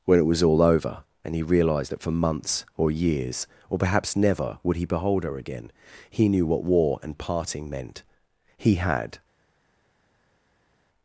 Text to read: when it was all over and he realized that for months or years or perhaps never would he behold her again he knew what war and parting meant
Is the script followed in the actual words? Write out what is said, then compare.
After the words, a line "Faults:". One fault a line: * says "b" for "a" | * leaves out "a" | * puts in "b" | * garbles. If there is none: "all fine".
when it was all over and he realized that for months or years or perhaps never would he behold her again he knew what war and parting meant he had
Faults:
* puts in "he had"